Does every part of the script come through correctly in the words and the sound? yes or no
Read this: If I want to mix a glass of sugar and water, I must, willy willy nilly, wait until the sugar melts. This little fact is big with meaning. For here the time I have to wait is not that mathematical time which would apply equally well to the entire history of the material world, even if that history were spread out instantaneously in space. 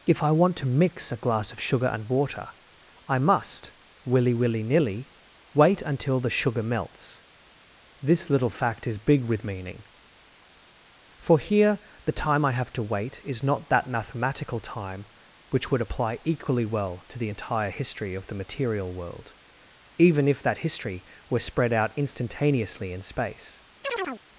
no